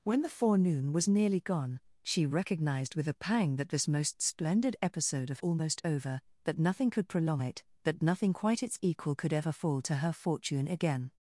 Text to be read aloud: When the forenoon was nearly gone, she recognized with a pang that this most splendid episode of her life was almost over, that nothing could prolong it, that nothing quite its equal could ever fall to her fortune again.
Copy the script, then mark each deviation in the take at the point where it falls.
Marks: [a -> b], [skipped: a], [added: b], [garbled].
When the forenoon was nearly gone, she recognized with a pang that this most splendid episode of [skipped: her life was] almost over, that nothing could prolong it, that nothing quite its equal could ever fall to her fortune again.